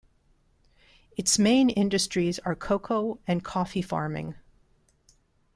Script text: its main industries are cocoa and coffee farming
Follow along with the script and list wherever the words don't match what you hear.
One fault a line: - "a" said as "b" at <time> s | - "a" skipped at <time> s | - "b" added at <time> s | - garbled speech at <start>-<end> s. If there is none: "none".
none